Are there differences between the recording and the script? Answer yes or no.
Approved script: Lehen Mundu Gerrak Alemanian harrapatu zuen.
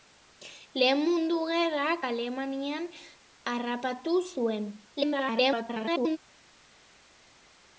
yes